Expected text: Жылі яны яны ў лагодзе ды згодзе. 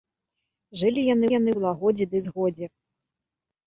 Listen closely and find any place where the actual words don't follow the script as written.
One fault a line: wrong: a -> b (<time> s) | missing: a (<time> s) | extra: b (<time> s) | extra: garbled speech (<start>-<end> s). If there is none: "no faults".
no faults